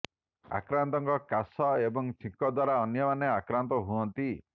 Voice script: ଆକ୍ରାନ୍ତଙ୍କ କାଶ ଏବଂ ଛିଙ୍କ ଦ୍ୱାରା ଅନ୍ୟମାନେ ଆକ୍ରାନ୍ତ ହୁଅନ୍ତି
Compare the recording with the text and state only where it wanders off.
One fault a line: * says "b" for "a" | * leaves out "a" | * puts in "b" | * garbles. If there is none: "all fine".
all fine